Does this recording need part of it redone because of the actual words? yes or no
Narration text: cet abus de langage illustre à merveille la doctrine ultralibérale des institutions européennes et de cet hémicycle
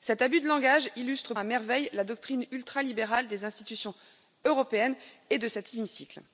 no